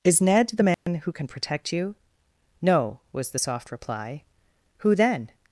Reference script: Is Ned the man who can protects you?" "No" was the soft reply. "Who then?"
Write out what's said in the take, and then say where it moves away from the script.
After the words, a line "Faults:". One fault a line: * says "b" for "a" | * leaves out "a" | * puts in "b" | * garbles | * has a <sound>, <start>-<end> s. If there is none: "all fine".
Is Ned the man who can protect you?" "No" was the soft reply. "Who then?"
Faults:
* has a dropout, 0.7-0.9 s
* says "protect" for "protects"